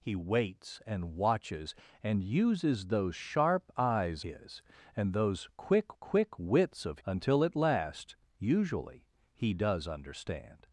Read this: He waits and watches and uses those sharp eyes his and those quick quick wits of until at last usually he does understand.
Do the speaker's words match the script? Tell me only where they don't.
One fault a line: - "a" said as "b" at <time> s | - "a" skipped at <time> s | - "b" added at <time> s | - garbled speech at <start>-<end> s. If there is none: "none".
none